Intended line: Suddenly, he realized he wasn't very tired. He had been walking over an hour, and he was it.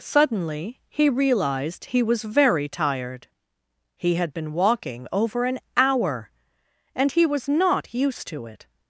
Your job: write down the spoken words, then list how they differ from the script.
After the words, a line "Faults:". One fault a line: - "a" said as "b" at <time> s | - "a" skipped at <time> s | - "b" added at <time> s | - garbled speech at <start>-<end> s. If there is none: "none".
Suddenly, he realized he was very tired. He had been walking over an hour, and he was not used to it.
Faults:
- "wasn't" said as "was" at 2.0 s
- "not used to" added at 7.5 s